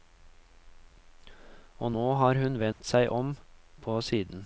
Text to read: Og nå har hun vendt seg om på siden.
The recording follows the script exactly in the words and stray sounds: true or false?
false